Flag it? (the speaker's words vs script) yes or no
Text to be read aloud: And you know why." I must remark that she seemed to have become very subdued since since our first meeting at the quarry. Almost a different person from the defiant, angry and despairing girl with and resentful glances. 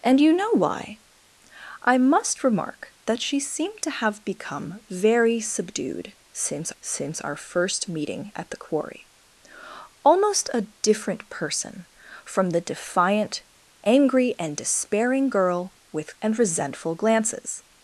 no